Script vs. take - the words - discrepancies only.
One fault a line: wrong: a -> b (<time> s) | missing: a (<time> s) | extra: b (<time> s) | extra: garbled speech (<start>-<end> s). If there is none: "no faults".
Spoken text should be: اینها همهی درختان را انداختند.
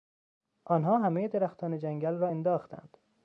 wrong: اینها -> آنها (0.7 s)
extra: جنگل (1.8 s)